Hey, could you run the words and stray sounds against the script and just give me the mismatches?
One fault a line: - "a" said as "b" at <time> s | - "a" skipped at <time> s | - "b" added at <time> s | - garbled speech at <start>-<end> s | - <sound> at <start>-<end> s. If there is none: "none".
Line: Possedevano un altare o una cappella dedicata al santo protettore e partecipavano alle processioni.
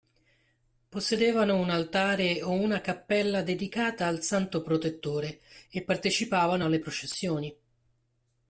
none